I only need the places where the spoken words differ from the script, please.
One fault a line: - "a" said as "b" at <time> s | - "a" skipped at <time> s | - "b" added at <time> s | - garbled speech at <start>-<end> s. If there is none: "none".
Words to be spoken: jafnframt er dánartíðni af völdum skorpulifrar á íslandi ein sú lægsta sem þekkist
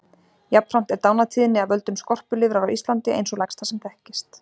none